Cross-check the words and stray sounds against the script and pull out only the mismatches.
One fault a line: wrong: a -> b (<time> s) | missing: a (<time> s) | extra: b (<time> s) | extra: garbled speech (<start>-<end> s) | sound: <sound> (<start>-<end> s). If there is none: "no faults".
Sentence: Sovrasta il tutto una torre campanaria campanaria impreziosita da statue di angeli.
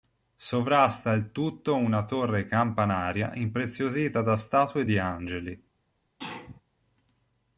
missing: campanaria (3.4 s)
sound: sneeze (6.2-6.6 s)